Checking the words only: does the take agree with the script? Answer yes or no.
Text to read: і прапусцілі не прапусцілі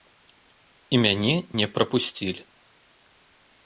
no